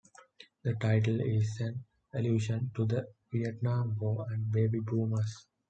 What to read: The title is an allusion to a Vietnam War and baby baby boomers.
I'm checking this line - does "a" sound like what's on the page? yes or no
no